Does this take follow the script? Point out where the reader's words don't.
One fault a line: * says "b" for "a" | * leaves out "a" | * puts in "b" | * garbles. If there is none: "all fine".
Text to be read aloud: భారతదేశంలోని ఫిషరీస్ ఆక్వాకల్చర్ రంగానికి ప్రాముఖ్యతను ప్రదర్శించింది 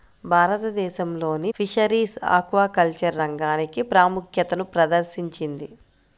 all fine